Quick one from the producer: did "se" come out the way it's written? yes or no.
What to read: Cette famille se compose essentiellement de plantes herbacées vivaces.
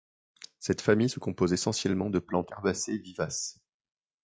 yes